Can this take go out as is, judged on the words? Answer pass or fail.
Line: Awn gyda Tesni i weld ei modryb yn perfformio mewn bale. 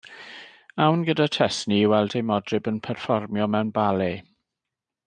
pass